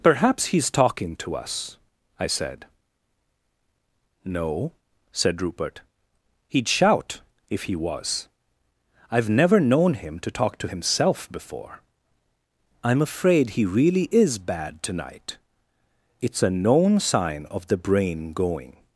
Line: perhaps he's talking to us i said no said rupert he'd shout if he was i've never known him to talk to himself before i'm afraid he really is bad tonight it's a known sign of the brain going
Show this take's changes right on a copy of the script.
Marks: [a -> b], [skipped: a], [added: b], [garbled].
perhaps he's talking to us i said no said rupert he'd shout if he was i've never known him to talk to himself before i'm afraid he really is bad tonight it's a known sign of the brain going